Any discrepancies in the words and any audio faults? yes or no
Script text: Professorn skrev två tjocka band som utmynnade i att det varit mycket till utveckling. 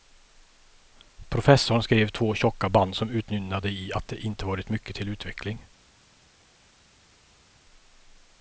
yes